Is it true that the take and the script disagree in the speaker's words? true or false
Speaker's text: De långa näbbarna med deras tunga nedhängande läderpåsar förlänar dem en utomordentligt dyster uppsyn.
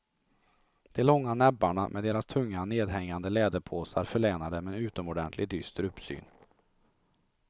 false